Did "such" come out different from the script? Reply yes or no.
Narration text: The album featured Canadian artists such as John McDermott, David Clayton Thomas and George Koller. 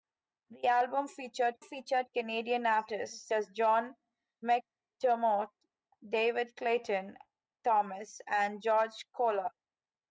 yes